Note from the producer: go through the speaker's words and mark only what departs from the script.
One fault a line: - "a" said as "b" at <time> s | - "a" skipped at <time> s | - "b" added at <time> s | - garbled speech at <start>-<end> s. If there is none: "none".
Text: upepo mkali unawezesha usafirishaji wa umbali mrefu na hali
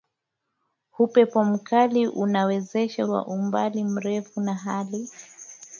- "usafirishaji" skipped at 3.0 s